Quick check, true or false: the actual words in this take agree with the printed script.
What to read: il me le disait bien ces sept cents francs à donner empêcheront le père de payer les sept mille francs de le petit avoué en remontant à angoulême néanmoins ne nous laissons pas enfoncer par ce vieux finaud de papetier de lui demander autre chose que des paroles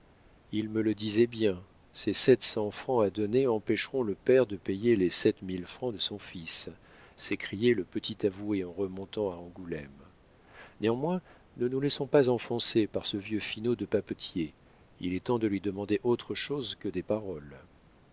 false